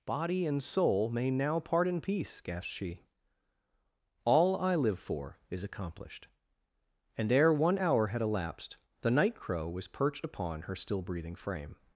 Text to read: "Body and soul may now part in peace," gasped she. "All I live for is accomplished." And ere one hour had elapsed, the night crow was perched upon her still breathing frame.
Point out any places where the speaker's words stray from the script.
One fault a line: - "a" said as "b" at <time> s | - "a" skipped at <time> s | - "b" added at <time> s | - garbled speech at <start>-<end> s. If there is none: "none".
none